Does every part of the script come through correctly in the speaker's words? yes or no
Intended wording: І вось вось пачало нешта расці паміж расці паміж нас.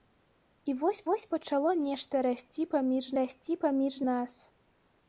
yes